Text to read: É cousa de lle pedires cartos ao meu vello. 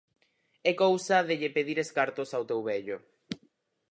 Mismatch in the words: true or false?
true